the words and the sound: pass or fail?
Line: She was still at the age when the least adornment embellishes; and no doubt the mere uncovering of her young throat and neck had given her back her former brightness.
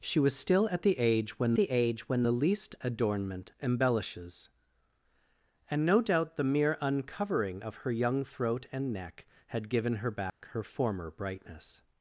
fail